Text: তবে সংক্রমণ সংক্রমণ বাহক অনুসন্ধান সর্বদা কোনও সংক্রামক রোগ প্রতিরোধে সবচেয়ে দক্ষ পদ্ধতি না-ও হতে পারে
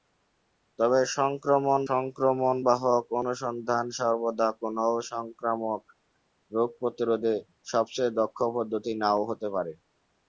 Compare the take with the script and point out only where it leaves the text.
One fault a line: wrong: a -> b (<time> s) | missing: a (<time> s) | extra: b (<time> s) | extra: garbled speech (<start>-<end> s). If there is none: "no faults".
no faults